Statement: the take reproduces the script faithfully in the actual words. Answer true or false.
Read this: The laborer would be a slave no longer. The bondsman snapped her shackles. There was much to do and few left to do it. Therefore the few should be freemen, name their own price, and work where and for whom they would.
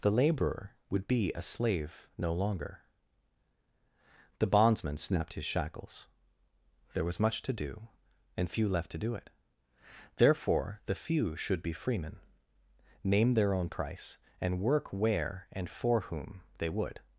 false